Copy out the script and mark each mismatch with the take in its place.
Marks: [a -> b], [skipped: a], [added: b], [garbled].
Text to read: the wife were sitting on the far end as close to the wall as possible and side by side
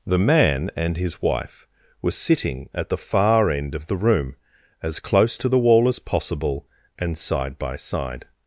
the [added: man and his] wife were sitting [on -> at] the far end [added: of the room] as close to the wall as possible and side by side